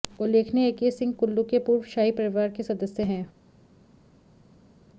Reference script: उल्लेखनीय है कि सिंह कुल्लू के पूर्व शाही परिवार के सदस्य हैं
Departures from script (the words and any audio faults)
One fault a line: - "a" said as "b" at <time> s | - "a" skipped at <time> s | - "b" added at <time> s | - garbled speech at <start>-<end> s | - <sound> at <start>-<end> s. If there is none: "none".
none